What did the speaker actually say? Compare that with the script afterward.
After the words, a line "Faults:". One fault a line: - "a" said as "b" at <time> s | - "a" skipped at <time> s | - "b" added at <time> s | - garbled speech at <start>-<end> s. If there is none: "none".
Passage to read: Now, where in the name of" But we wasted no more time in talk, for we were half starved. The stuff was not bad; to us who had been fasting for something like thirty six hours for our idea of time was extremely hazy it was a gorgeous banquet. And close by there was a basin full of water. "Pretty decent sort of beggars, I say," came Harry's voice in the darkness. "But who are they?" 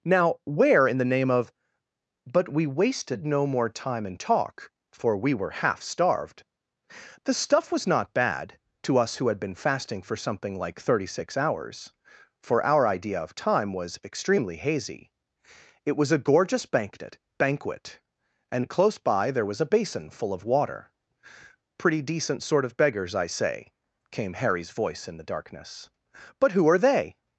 Now, where in the name of" But we wasted no more time in talk, for we were half starved. The stuff was not bad; to us who had been fasting for something like thirty six hours for our idea of time was extremely hazy it was a gorgeous banquet banquet. And close by there was a basin full of water. "Pretty decent sort of beggars, I say," came Harry's voice in the darkness. "But who are they?"
Faults:
- "banquet" added at 17.4 s